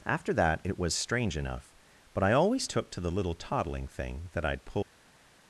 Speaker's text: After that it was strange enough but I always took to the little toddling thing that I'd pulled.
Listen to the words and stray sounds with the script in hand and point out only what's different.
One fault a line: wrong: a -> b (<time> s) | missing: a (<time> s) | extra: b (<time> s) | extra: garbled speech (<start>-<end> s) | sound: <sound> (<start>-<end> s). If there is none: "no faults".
no faults